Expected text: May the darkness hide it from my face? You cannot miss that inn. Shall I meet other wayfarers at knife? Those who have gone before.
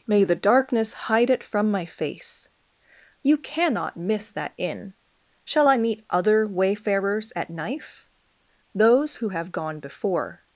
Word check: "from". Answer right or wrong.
right